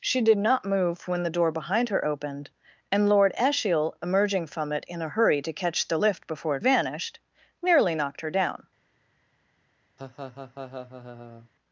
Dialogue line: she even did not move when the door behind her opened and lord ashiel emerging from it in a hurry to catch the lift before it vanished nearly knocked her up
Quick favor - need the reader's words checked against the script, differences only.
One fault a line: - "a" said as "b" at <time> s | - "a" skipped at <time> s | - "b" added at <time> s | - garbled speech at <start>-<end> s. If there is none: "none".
- "even" skipped at 0.2 s
- "up" said as "down" at 8.3 s